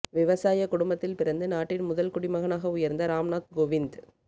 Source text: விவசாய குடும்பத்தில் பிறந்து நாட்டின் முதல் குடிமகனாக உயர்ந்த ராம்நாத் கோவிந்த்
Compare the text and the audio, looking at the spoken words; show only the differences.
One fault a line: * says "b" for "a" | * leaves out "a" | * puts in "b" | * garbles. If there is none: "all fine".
all fine